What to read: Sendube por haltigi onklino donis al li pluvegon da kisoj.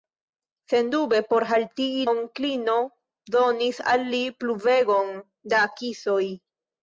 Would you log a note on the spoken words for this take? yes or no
no